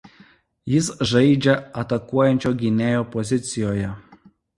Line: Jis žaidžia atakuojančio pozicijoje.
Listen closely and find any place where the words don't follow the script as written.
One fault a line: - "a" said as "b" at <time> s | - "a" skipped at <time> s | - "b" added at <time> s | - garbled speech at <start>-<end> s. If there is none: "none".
- "gynėjo" added at 2.6 s